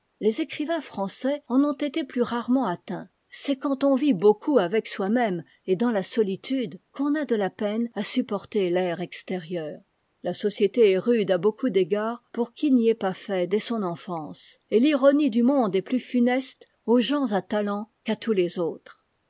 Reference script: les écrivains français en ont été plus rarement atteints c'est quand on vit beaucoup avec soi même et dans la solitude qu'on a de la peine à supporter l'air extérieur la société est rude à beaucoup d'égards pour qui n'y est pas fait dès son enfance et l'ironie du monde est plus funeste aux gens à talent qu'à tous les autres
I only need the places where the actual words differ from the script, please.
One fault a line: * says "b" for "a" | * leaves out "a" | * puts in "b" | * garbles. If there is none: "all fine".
all fine